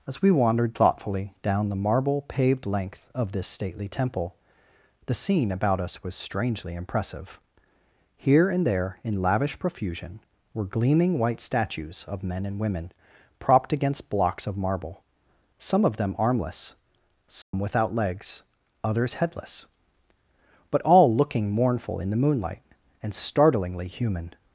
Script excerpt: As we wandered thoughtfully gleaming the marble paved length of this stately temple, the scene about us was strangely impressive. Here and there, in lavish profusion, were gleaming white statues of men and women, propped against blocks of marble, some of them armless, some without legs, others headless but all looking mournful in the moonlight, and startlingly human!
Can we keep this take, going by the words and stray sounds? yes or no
no